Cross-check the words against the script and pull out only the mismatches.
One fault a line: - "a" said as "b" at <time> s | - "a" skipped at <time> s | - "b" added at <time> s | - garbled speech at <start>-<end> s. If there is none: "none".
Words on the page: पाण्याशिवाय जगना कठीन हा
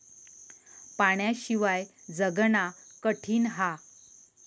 none